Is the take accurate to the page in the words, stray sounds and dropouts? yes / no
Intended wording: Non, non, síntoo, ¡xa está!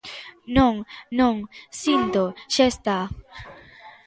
yes